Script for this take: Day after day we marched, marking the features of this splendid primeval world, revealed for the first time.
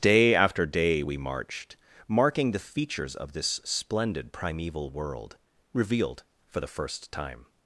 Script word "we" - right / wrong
right